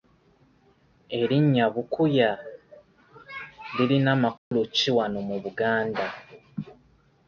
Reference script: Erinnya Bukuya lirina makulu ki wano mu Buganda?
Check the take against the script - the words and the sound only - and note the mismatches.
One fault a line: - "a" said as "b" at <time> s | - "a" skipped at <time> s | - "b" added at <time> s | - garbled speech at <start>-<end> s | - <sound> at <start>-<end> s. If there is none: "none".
- dropout at 4.4-4.5 s